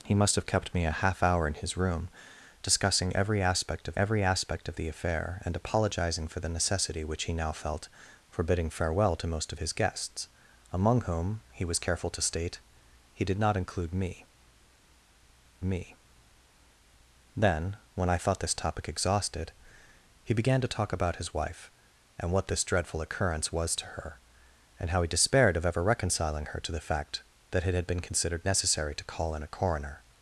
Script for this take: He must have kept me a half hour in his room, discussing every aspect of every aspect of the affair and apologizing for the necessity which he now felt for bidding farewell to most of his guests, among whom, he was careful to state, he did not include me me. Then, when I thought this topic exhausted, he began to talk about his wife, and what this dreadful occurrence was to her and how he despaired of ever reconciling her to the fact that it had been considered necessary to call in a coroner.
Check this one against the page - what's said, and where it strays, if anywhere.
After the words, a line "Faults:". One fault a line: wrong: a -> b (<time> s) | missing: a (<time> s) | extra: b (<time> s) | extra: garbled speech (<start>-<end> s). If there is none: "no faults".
He must have kept me a half hour in his room, discussing every aspect of every aspect of the affair and apologizing for the necessity which he now felt for bidding farewell to most of his guests, among whom, he was careful to state, he did not include me me. Then, when I thought this topic exhausted, he began to talk about his wife, and what this dreadful occurrence was to her and how he despaired of ever reconciling her to the fact that it had been considered necessary to call in a coroner.
Faults:
no faults